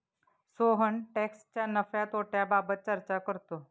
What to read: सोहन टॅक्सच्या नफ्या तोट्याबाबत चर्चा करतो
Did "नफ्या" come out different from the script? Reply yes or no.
no